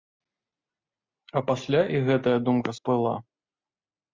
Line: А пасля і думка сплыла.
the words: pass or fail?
fail